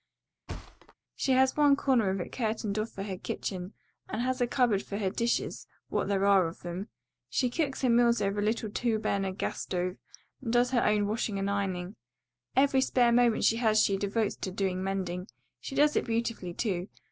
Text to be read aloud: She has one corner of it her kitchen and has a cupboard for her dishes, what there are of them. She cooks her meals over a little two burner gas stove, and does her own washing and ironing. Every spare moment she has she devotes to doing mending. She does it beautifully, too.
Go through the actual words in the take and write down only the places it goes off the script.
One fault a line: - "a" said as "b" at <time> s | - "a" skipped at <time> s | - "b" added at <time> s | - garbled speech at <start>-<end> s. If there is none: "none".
- "curtained off for" added at 2.3 s